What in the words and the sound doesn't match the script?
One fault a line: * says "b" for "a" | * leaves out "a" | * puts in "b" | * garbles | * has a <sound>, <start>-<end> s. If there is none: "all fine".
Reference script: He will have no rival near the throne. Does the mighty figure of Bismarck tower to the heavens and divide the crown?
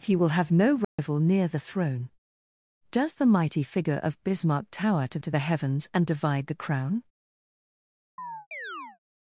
* has a dropout, 0.8-1.0 s
* puts in "to"
* has a chirp, 8.2-9.0 s